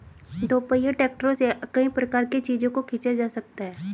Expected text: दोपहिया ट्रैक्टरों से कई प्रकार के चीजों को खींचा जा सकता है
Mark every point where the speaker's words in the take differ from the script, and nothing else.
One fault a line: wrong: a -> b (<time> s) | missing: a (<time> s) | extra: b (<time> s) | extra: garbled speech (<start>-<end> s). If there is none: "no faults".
no faults